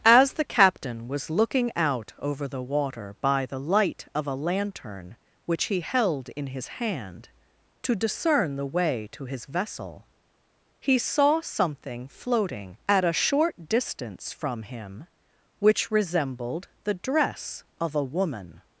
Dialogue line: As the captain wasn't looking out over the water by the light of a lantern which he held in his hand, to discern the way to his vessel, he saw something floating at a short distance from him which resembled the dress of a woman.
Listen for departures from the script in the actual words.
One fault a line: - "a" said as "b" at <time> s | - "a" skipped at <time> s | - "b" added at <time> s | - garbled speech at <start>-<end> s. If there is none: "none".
- "wasn't" said as "was" at 1.1 s